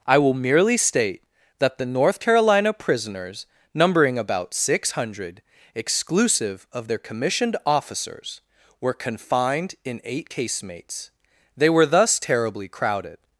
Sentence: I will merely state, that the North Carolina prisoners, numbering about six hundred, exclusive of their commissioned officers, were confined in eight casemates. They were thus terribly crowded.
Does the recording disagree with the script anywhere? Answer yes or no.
no